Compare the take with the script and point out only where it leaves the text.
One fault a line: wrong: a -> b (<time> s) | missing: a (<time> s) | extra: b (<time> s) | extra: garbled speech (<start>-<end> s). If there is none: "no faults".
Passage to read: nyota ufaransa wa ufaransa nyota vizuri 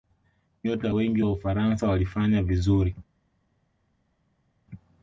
wrong: ufaransa -> wengi (0.9 s)
wrong: nyota -> walifanya (1.9 s)